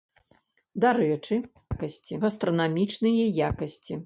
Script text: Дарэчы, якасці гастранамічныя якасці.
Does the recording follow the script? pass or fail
pass